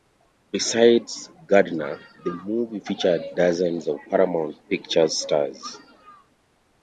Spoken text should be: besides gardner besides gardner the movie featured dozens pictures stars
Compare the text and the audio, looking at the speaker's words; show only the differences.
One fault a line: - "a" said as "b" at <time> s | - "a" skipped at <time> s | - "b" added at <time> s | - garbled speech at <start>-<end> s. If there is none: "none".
- "besides gardner" skipped at 2.0 s
- "of paramount" added at 3.9 s